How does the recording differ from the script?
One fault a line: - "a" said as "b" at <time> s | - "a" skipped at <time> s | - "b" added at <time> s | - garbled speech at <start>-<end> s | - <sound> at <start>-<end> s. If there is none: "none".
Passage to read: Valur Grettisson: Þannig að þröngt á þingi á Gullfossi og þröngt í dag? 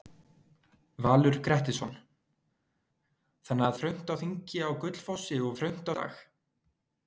none